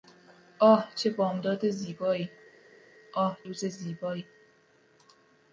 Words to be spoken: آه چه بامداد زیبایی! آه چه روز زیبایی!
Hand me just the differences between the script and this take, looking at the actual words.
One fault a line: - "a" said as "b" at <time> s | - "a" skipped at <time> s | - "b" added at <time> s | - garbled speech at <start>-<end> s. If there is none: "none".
- "چه" skipped at 3.4 s